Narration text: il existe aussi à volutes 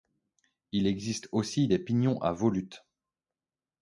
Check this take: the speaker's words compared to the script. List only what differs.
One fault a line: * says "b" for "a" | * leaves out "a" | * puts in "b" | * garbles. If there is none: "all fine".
* puts in "des pignons"